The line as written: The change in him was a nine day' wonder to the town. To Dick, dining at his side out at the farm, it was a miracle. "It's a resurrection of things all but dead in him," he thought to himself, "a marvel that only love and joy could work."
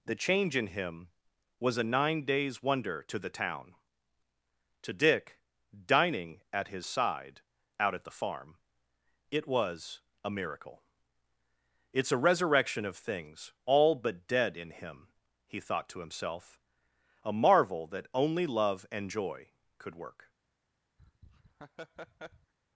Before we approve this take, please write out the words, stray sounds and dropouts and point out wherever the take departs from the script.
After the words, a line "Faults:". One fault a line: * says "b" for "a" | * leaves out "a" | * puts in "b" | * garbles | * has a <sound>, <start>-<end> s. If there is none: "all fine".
The change in him was a nine days' wonder to the town. To Dick, dining at his side out at the farm, it was a miracle. "It's a resurrection of things all but dead in him," he thought to himself, "a marvel that only love and joy could work."
Faults:
* says "days" for "day"
* has a laugh, 21.0-22.5 s